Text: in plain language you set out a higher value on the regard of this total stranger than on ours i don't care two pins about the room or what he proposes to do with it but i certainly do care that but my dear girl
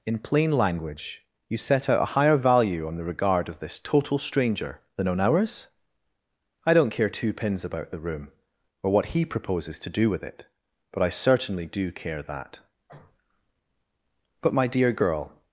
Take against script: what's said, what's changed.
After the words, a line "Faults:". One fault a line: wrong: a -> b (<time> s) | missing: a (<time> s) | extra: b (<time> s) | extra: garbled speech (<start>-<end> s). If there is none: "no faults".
in plain language you set out a higher value on the regard of this total stranger than on ours i don't care two pins about the room or what he proposes to do with it but i certainly do care that but my dear girl
Faults:
no faults